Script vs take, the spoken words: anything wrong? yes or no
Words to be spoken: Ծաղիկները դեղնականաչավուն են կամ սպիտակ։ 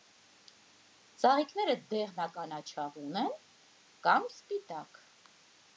no